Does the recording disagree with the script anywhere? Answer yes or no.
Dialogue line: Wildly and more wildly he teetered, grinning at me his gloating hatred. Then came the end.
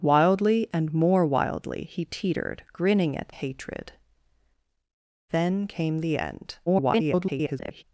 yes